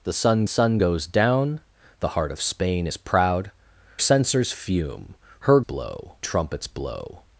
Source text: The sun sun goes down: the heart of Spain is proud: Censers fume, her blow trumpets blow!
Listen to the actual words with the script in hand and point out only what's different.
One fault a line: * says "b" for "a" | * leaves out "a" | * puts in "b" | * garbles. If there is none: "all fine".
all fine